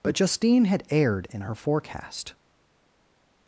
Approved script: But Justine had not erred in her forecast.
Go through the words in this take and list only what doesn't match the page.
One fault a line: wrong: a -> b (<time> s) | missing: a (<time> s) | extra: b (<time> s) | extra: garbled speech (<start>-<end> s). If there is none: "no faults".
missing: not (0.8 s)